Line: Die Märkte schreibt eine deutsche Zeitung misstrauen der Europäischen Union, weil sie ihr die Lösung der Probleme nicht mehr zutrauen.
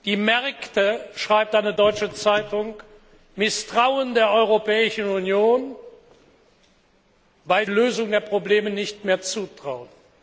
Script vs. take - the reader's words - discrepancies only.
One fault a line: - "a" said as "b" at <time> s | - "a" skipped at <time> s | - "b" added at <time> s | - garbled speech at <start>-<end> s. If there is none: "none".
- "sie ihr die" skipped at 7.7 s